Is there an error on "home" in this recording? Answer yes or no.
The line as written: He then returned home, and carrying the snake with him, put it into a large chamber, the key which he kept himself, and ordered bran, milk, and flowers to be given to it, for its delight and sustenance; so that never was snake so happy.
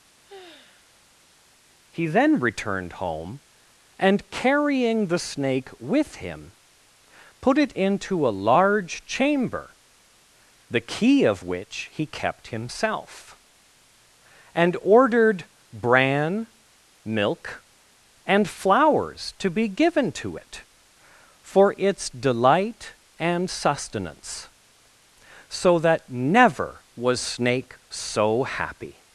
no